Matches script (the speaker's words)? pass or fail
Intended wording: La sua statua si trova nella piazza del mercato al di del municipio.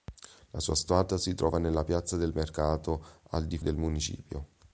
pass